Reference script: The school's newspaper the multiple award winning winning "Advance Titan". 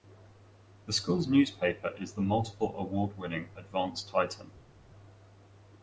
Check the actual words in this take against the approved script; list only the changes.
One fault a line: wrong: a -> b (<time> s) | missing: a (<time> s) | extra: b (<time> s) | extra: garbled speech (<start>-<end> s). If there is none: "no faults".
extra: is (2.0 s)
missing: winning (3.5 s)